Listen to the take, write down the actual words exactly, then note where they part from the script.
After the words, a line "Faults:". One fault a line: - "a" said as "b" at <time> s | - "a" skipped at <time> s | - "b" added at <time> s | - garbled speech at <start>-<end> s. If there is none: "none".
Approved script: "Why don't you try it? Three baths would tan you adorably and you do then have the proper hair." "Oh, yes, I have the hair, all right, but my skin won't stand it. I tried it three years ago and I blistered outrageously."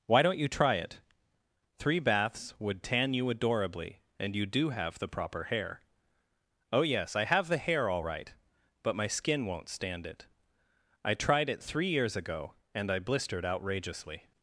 "Why don't you try it? Three baths would tan you adorably and you do have the proper hair." "Oh, yes, I have the hair, all right, but my skin won't stand it. I tried it three years ago and I blistered outrageously."
Faults:
- "then" skipped at 4.7 s